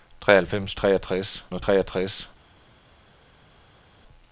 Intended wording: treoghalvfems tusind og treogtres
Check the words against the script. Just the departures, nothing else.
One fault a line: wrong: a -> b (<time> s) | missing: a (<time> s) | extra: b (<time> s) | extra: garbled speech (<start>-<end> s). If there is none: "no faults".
wrong: tusind -> treogtres (0.8 s)